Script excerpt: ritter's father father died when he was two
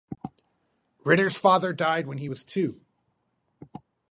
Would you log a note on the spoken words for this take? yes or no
yes